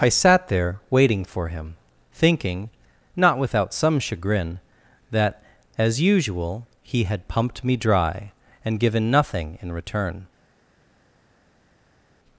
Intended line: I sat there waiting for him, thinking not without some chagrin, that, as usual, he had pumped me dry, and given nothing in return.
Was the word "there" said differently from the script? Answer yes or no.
no